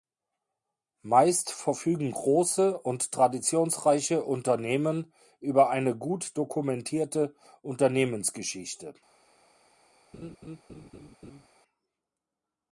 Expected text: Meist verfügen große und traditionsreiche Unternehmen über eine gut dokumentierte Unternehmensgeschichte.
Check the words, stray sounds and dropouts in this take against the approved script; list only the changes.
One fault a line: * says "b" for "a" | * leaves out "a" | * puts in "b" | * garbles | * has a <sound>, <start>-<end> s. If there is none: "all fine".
* has a laugh, 10.1-11.5 s